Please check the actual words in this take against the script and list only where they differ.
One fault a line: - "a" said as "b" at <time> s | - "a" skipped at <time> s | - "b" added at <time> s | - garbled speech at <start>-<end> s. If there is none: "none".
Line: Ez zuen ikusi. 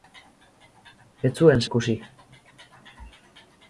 none